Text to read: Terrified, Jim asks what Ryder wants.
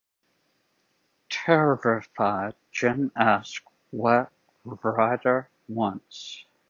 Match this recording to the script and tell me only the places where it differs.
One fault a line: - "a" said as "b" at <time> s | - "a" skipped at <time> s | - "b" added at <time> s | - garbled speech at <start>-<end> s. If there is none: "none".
none